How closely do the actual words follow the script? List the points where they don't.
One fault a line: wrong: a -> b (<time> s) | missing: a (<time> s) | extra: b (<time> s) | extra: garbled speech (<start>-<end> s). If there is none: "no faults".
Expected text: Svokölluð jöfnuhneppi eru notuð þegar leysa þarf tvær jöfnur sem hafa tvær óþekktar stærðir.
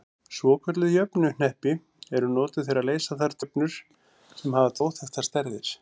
missing: tvær (3.4 s)
missing: tvær (4.8 s)